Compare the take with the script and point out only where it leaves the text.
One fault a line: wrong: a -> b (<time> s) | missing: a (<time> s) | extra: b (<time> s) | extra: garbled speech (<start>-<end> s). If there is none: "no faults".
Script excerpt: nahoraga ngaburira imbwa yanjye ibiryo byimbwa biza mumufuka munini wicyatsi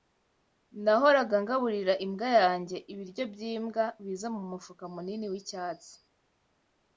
no faults